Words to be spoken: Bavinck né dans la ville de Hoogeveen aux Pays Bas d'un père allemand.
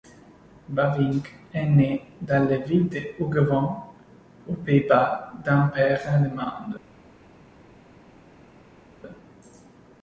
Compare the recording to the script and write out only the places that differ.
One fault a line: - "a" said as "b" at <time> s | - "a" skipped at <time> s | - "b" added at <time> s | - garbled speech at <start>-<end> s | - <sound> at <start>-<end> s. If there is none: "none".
- "est" added at 1.5 s